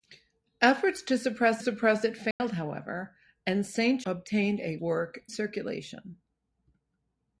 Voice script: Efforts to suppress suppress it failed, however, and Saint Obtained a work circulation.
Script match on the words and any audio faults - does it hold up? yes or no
no